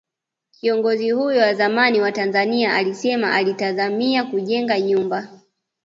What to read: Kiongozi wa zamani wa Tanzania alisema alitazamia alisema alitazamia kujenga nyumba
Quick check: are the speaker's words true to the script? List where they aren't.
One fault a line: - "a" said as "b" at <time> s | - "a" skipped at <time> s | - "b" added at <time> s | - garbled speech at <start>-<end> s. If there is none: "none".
- "huyo" added at 1.1 s
- "alisema alitazamia" skipped at 4.2 s